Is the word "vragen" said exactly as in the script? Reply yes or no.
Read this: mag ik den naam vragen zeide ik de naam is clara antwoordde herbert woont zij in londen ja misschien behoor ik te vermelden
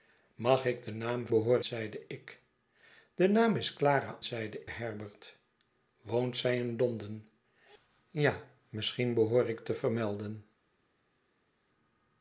no